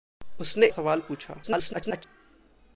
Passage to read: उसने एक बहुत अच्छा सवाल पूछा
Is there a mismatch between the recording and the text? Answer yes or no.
yes